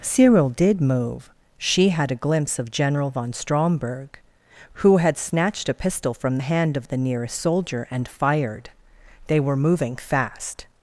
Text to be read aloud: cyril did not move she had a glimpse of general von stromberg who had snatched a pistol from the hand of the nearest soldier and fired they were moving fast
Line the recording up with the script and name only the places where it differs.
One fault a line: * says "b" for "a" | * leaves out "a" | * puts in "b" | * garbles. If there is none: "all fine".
* leaves out "not"